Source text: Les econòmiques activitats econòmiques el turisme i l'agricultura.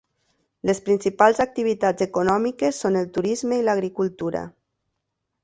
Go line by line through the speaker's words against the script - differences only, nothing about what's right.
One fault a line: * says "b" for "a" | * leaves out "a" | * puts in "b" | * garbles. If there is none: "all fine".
* says "principals" for "econòmiques"
* puts in "són"